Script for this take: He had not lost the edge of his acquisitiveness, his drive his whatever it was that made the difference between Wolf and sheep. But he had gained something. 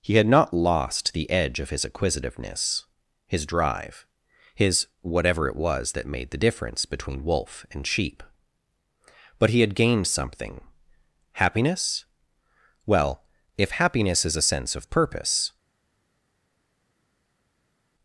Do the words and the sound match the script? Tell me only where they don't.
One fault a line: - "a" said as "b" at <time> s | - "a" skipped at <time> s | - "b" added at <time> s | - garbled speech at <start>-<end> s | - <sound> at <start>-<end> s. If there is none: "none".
- "Happiness Well if happiness is a sense of purpose" added at 11.3 s